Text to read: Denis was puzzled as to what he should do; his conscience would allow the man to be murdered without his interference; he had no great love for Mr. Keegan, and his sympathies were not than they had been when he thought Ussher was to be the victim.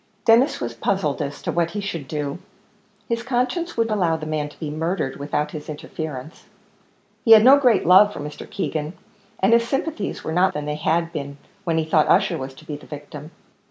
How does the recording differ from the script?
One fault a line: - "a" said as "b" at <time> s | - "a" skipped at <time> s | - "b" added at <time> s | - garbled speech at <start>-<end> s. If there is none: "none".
none